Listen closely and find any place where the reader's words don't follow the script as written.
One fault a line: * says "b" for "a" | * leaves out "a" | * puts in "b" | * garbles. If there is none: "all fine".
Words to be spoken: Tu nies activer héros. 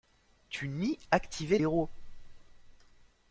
all fine